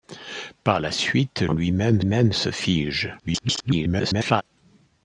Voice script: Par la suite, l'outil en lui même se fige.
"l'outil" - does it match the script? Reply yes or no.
no